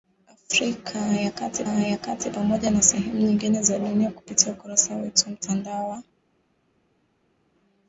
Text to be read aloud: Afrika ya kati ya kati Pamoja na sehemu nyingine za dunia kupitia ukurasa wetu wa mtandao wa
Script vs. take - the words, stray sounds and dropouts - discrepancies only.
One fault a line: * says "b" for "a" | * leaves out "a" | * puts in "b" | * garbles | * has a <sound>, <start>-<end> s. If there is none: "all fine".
all fine